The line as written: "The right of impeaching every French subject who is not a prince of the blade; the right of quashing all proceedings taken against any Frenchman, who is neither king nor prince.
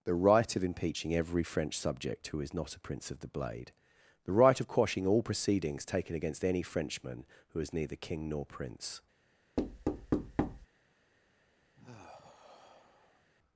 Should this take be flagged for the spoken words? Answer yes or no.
no